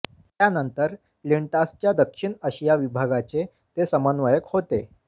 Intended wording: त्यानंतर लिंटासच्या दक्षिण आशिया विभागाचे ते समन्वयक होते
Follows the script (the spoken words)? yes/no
yes